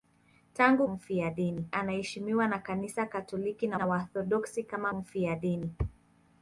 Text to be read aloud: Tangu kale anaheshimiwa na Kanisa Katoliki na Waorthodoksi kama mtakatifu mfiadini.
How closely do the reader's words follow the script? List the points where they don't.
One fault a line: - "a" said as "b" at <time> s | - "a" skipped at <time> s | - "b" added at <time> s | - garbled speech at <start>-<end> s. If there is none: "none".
- "kale" said as "mfiadini" at 0.9 s
- "na" added at 3.7 s
- "mtakatifu" skipped at 4.9 s